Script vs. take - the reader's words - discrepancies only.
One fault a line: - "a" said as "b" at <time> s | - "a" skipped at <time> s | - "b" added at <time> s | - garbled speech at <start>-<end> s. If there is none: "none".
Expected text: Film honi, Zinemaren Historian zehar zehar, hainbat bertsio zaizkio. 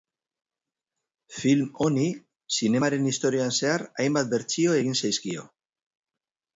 - "zehar" skipped at 3.9 s
- "egin" added at 4.8 s